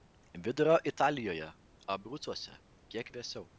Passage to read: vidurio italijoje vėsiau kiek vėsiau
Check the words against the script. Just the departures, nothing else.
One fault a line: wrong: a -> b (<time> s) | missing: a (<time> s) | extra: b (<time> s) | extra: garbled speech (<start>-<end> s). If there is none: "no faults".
wrong: vėsiau -> abrucuose (1.9 s)